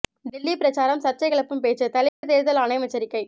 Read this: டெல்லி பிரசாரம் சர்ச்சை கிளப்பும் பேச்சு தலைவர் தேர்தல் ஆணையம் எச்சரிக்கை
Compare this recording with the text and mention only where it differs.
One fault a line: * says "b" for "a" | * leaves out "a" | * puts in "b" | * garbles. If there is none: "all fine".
all fine